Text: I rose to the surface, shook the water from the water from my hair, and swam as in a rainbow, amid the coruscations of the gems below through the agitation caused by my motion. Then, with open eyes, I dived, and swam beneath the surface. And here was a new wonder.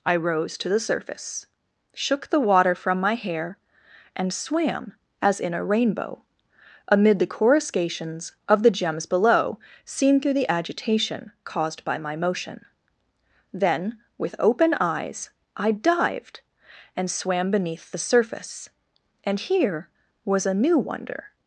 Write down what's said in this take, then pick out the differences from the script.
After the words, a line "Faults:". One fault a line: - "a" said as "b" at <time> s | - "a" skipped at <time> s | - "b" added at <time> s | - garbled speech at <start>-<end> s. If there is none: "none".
I rose to the surface, shook the water from my hair, and swam as in a rainbow, amid the coruscations of the gems below seen through the agitation caused by my motion. Then, with open eyes, I dived, and swam beneath the surface. And here was a new wonder.
Faults:
- "the water from" skipped at 3.0 s
- "seen" added at 9.8 s